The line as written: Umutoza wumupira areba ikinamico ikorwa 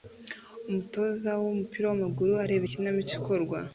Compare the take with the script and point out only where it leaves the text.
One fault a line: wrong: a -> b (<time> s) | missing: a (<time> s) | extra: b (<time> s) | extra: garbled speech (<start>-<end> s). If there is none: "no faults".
extra: wamaguru (1.9 s)